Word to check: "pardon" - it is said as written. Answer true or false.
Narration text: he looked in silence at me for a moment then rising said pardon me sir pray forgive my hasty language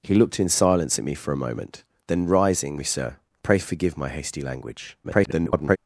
false